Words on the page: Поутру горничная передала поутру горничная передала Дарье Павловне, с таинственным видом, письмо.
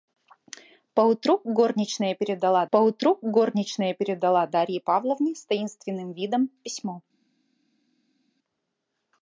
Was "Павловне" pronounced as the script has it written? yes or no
yes